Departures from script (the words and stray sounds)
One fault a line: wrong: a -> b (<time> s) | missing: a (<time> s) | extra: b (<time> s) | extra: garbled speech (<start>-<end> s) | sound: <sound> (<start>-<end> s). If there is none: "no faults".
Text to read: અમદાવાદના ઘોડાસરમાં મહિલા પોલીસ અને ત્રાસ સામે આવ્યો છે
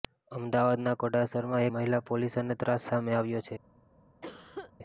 sound: cough (4.2-4.7 s)